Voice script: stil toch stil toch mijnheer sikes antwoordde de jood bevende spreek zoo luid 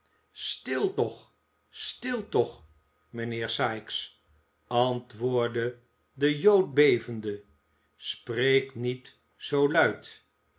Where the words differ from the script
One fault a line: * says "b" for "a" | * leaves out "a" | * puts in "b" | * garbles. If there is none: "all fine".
* puts in "niet"